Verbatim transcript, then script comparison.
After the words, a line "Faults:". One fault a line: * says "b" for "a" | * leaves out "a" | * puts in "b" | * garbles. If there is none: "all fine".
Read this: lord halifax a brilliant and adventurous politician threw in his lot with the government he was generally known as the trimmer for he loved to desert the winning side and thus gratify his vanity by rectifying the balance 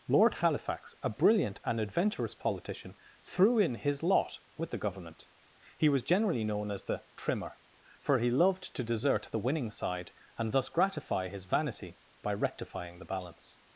lord halifax a brilliant and adventurous politician threw in his lot with the government he was generally known as the trimmer for he loved to desert the winning side and thus gratify his vanity by rectifying the balance
Faults:
all fine